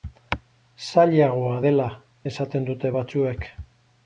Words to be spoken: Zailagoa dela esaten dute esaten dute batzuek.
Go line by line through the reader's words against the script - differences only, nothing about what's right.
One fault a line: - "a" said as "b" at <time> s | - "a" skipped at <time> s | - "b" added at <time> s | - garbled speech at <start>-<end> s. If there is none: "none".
- "esaten dute" skipped at 2.9 s